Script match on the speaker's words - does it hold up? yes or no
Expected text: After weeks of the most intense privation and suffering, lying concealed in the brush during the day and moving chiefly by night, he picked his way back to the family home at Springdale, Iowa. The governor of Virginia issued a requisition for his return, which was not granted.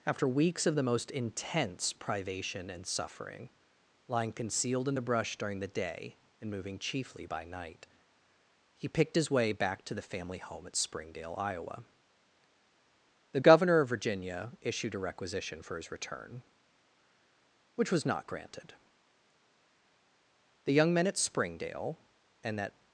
no